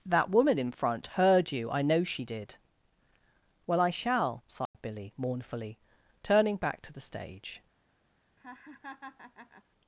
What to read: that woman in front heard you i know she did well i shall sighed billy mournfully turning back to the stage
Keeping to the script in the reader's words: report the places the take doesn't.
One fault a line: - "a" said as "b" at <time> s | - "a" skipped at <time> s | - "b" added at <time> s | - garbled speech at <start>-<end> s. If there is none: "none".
none